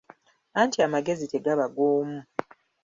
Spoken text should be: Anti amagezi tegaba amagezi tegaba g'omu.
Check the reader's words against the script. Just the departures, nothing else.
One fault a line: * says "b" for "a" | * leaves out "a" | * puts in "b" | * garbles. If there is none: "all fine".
* leaves out "amagezi tegaba"